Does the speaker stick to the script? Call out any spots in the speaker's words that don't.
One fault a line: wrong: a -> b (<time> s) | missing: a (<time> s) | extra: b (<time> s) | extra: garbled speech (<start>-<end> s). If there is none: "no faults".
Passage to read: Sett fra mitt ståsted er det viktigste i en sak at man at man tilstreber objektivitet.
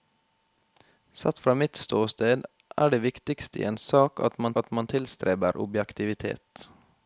no faults